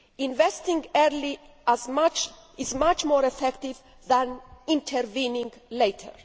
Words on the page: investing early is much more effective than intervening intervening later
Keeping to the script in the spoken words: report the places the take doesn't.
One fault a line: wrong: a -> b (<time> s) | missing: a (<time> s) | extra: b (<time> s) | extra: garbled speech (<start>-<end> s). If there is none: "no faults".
missing: intervening (5.5 s)